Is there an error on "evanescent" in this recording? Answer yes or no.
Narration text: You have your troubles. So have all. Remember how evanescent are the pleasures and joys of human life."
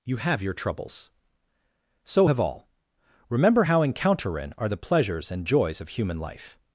yes